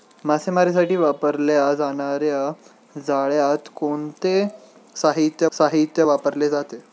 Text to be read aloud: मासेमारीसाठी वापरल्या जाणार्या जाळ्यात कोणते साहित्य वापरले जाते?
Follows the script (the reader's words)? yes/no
no